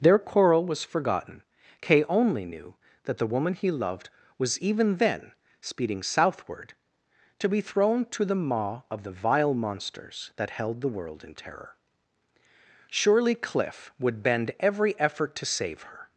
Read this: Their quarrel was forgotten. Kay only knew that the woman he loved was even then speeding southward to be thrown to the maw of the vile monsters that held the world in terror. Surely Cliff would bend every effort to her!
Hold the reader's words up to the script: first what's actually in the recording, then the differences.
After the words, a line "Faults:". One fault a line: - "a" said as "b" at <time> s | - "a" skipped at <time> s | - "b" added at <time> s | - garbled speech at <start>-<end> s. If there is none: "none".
Their quarrel was forgotten. Kay only knew that the woman he loved was even then speeding southward to be thrown to the maw of the vile monsters that held the world in terror. Surely Cliff would bend every effort to save her!
Faults:
- "save" added at 15.5 s